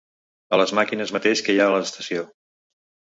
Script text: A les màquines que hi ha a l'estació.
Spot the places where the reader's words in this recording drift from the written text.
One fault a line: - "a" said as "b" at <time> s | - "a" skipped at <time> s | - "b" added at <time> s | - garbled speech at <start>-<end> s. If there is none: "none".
- "mateix" added at 1.2 s